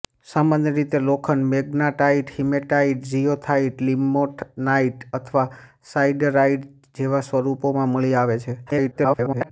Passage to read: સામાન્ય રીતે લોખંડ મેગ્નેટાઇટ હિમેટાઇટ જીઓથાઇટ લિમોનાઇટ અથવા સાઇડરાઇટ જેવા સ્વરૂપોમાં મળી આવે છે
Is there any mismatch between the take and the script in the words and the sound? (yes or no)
yes